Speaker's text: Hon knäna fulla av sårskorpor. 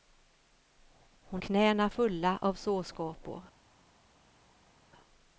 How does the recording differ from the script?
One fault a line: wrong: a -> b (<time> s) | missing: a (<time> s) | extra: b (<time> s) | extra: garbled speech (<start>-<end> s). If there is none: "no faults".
no faults